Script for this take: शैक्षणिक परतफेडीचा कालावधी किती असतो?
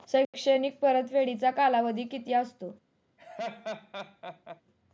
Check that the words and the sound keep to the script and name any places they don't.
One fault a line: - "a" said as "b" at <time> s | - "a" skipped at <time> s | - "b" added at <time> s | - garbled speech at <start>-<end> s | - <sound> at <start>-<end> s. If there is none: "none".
- laugh at 3.2-4.6 s